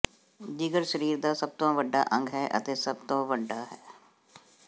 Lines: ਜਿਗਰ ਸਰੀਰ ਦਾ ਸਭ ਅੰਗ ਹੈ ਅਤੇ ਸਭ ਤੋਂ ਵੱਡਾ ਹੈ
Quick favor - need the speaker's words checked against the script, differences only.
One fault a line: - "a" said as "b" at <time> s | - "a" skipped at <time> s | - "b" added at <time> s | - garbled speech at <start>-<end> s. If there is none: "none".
- "ਤੋਂ ਵੱਡਾ" added at 1.6 s